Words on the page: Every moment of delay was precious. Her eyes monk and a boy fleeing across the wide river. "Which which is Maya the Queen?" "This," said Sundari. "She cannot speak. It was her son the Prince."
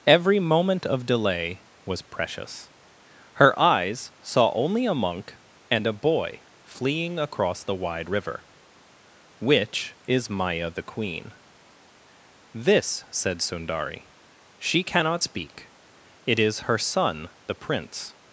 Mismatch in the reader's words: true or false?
true